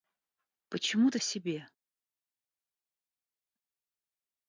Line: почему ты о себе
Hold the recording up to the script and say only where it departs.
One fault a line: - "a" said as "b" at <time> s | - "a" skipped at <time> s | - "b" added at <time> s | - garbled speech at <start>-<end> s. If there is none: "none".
none